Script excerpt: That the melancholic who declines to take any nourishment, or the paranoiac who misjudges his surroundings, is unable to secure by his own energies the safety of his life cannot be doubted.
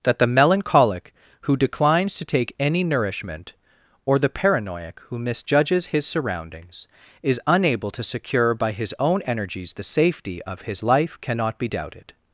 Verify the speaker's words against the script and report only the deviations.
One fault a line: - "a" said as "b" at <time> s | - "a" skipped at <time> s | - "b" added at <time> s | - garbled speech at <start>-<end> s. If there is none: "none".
none